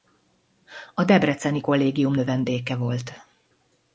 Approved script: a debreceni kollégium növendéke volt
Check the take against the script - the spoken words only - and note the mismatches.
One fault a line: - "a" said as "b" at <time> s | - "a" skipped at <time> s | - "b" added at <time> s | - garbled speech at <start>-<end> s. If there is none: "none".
none